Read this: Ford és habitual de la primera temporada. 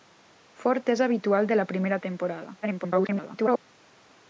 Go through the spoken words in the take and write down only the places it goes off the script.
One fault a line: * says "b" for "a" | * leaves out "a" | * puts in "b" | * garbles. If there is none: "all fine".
* garbles